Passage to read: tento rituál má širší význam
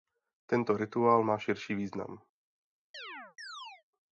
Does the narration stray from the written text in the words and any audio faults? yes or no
yes